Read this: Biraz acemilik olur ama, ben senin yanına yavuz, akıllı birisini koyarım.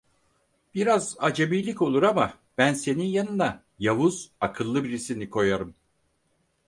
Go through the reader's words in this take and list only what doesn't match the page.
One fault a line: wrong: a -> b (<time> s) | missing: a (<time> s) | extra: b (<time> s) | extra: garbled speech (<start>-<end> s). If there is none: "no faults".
no faults